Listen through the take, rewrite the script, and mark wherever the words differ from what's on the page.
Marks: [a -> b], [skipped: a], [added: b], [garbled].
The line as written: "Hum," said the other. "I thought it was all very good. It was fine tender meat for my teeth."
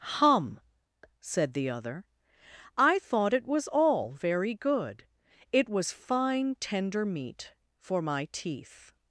"Hum," said the other. "I thought it was all very good. It was fine tender meat for my teeth."